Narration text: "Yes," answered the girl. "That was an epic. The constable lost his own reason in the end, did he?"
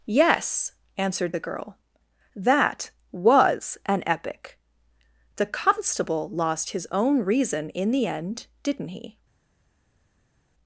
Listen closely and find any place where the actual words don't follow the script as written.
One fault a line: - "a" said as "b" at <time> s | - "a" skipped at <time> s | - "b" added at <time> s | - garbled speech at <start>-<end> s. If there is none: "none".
- "did" said as "didn't" at 8.6 s